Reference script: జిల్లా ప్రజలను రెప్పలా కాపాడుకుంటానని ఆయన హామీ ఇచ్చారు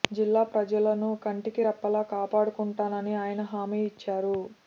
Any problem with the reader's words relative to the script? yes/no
yes